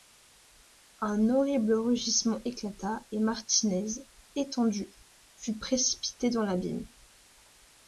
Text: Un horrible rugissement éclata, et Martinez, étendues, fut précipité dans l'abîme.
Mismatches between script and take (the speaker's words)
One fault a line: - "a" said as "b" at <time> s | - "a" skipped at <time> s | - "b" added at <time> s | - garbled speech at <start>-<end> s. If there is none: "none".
none